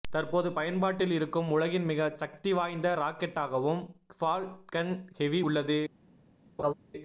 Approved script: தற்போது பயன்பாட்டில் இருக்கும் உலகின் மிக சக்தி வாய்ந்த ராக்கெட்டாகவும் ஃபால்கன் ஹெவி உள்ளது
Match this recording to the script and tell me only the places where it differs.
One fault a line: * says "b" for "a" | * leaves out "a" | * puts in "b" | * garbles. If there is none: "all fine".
all fine